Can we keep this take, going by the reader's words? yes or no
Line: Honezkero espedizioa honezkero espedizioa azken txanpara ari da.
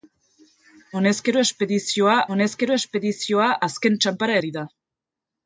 yes